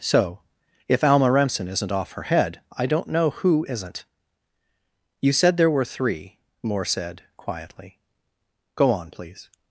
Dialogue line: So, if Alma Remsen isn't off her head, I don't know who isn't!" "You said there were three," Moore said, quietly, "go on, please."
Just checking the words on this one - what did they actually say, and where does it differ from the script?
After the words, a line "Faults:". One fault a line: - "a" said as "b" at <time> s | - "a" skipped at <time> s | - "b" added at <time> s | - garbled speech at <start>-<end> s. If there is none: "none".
So, if Alma Remsen isn't off her head, I don't know who isn't!" "You said there were three," Moore said, quietly, "go on, please."
Faults:
none